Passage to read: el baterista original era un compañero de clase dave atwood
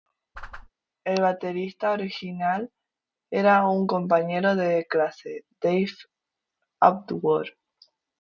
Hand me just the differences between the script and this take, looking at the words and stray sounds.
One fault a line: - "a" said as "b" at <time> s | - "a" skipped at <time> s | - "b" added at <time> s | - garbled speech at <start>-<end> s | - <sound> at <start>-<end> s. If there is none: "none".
- whoosh at 0.3-0.7 s